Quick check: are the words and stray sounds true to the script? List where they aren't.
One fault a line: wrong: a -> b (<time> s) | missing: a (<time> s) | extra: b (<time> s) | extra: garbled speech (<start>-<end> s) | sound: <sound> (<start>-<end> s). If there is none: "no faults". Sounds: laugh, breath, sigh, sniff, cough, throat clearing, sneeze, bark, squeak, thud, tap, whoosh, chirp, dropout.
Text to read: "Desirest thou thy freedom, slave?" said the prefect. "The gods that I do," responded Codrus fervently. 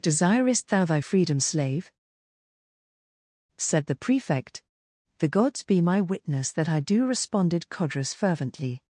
extra: be my witness (5.6 s)